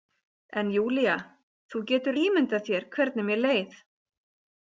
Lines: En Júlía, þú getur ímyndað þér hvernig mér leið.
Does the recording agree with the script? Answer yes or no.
yes